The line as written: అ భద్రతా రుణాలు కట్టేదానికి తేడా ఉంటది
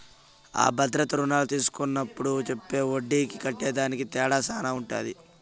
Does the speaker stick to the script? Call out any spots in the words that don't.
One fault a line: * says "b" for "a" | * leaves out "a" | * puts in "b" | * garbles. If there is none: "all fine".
* puts in "తీస్కున్నప్పుడు చెప్పే ఒడ్డీకి"
* puts in "శాన"